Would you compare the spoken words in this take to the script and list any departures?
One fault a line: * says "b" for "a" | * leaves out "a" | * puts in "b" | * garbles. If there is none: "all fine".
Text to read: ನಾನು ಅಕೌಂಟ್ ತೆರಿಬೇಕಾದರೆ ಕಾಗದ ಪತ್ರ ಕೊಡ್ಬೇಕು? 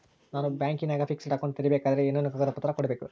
* puts in "ಬ್ಯಾಂಕಿನಾಗ ಫಿಕ್ಸೆಡ್"
* puts in "ಏನೇನು"